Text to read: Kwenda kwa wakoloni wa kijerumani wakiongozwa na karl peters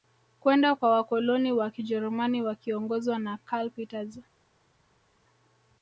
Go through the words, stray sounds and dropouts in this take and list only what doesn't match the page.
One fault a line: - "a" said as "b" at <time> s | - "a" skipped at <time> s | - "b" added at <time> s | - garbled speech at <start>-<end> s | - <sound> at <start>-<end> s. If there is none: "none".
none